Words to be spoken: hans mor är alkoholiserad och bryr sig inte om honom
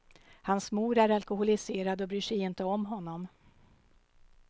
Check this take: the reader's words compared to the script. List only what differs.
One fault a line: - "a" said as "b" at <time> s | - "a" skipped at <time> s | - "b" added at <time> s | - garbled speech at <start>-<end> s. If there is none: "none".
none